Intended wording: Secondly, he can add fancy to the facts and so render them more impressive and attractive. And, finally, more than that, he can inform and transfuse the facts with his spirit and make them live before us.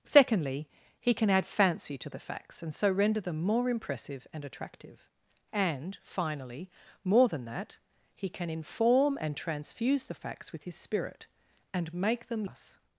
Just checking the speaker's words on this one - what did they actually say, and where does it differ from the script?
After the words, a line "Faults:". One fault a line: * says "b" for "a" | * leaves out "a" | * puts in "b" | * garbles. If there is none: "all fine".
Secondly, he can add fancy to the facts and so render them more impressive and attractive. And, finally, more than that, he can inform and transfuse the facts with his spirit and make them us.
Faults:
* leaves out "live before"